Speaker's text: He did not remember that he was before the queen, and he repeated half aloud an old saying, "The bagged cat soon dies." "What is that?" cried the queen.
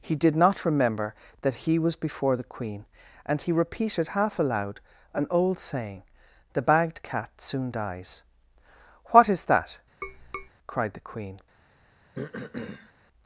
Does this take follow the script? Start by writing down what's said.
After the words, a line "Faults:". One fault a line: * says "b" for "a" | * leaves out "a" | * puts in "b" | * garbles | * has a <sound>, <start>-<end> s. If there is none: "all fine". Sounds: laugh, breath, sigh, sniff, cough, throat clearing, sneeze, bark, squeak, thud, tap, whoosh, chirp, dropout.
He did not remember that he was before the queen, and he repeated half aloud an old saying, "The bagged cat soon dies." "What is that?" cried the queen.
Faults:
* has a tap, 10.0-10.5 s
* has a throat clearing, 12.1-12.9 s